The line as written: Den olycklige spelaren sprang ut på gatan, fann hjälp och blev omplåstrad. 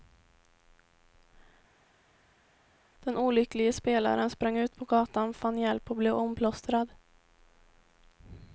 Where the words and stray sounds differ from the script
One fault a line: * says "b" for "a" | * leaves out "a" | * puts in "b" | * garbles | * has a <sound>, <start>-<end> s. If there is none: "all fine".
all fine